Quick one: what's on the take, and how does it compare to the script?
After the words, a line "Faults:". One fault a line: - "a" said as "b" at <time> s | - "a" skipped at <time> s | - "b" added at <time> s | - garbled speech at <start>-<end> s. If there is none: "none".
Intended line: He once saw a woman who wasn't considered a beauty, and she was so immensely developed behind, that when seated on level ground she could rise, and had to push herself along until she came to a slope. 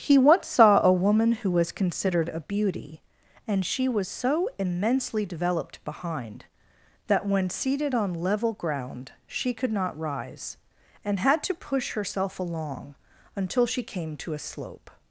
He once saw a woman who was considered a beauty, and she was so immensely developed behind, that when seated on level ground she could not rise, and had to push herself along until she came to a slope.
Faults:
- "wasn't" said as "was" at 1.5 s
- "not" added at 9.7 s